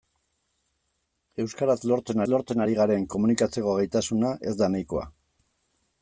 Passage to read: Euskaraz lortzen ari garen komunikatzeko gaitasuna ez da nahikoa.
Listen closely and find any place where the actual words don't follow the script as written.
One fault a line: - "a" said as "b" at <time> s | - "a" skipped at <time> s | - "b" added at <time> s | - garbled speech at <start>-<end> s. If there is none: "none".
- "lortzen" added at 2.3 s